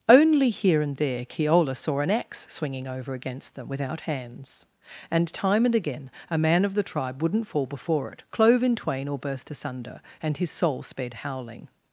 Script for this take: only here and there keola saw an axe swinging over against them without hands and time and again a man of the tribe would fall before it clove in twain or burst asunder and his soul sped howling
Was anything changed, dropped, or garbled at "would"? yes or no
yes